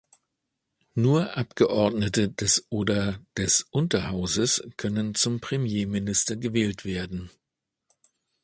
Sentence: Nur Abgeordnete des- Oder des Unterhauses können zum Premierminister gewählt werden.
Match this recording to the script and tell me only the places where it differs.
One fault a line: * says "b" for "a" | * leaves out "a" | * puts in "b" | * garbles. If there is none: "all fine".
all fine